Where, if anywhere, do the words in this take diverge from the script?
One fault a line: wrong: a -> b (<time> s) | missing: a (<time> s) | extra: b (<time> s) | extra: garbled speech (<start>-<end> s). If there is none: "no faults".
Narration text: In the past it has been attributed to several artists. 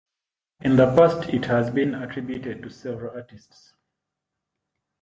no faults